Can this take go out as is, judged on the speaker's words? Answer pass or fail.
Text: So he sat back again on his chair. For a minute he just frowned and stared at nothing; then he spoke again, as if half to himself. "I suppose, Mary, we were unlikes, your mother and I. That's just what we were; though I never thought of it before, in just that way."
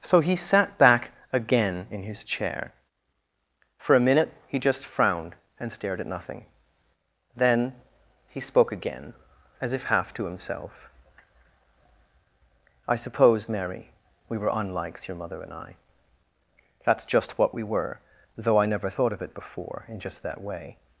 fail